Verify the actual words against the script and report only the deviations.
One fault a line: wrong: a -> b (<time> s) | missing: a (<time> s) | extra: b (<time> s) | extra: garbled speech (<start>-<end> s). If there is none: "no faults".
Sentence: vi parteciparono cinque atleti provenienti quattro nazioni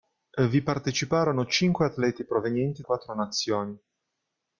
no faults